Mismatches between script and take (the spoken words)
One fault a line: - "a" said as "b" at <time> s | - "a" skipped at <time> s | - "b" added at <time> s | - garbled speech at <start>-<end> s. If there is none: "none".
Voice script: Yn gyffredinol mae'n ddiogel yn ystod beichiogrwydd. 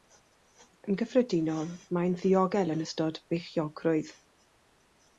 none